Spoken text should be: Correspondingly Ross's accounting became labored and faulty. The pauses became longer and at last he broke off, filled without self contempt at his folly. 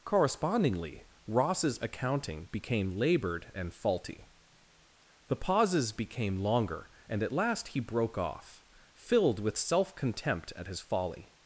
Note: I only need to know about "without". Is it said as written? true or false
false